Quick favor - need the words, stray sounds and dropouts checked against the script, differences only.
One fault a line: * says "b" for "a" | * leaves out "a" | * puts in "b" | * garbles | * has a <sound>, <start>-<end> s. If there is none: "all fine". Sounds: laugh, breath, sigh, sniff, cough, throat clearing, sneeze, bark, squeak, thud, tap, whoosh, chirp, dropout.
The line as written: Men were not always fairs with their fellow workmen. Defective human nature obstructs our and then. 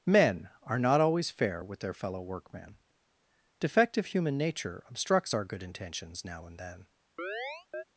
* says "are" for "were"
* says "fair" for "fairs"
* puts in "good intentions now"
* has a chirp, 7.2-7.8 s